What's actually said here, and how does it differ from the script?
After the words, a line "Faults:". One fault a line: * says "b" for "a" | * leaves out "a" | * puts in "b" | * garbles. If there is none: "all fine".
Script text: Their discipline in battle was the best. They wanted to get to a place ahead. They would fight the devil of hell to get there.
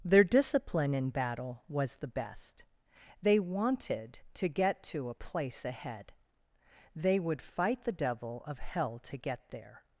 Their discipline in battle was the best. They wanted to get to a place ahead. They would fight the devil of hell to get there.
Faults:
all fine